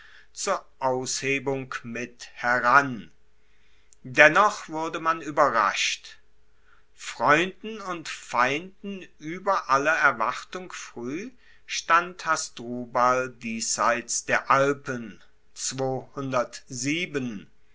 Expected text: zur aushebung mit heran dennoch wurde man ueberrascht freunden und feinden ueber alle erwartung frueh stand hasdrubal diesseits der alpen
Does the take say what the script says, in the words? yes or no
yes